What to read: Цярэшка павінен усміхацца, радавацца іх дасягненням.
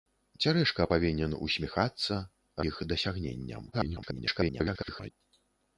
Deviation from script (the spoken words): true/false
true